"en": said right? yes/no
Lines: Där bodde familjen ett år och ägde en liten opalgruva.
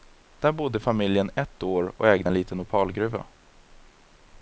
yes